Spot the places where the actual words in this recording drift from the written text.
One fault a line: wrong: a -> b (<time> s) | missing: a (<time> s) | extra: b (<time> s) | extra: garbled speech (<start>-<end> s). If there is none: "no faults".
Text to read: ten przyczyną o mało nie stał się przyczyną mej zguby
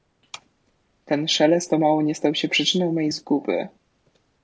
wrong: przyczyną -> szelest (1.3 s)